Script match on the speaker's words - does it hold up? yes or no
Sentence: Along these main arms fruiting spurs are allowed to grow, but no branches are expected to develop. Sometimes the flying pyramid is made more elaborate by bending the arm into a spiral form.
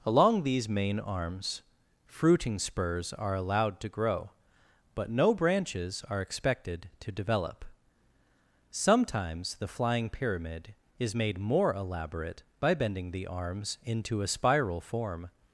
no